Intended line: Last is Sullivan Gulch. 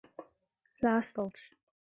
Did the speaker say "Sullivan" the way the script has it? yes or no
no